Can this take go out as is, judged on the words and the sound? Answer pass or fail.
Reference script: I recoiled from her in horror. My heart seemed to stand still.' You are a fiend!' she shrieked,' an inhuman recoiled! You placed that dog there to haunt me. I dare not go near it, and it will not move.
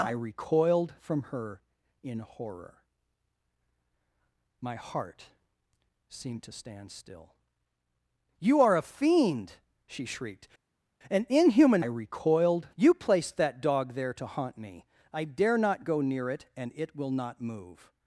pass